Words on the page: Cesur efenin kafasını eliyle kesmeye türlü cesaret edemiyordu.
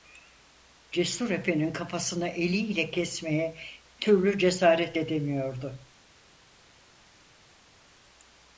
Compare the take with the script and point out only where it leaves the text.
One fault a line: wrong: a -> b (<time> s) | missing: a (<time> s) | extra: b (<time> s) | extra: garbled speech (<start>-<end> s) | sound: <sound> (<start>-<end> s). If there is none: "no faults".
no faults